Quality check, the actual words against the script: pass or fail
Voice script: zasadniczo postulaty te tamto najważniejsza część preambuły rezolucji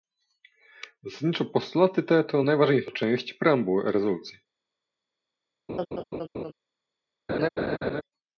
fail